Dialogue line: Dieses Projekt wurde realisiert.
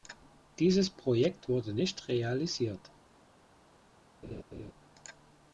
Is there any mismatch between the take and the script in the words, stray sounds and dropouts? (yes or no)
yes